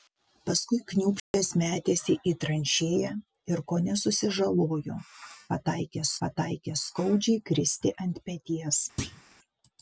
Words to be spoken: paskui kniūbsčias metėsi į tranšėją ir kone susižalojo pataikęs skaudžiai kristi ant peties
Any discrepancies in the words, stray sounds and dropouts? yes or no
yes